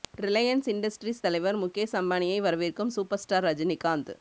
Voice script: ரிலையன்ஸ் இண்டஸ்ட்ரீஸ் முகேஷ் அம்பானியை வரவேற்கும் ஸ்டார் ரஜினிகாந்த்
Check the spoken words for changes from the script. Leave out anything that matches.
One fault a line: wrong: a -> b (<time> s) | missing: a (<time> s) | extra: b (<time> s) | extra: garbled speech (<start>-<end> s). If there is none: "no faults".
extra: தலைவர் (1.2 s)
extra: சூப்பர் (2.9 s)